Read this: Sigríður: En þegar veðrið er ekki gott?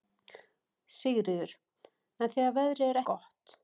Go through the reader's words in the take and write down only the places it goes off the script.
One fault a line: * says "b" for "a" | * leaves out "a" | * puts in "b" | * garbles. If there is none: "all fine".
* leaves out "ekki"